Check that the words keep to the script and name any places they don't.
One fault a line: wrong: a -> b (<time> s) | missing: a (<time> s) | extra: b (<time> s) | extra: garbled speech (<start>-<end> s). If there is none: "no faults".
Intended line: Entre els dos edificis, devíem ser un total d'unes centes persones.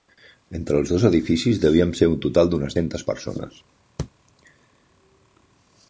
no faults